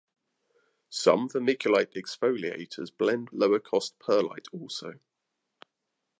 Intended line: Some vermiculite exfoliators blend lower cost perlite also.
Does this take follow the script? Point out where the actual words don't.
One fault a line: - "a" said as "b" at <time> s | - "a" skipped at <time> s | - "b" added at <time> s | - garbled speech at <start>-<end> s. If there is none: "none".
none